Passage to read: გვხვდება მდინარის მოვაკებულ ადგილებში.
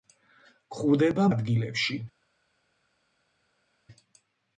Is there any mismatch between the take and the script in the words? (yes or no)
yes